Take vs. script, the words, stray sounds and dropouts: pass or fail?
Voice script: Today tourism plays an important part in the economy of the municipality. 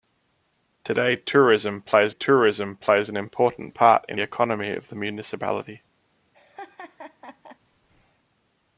fail